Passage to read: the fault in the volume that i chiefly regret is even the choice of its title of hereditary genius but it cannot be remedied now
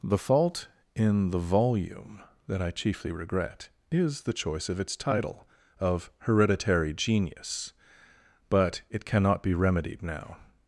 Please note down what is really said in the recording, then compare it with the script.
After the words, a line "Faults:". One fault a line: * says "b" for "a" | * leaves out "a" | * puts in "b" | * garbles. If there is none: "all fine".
the fault in the volume that i chiefly regret is the choice of its title of hereditary genius but it cannot be remedied now
Faults:
* leaves out "even"